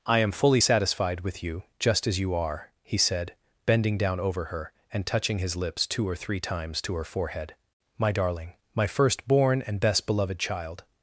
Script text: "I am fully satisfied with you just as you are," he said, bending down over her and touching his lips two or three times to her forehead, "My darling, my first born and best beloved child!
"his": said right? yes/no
yes